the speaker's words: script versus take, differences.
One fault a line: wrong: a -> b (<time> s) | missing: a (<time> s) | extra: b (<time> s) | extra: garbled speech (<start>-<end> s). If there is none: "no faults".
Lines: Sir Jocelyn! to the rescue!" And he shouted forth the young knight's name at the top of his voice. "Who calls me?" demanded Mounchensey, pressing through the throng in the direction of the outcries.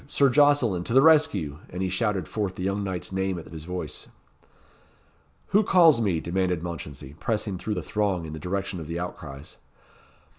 missing: top of (3.5 s)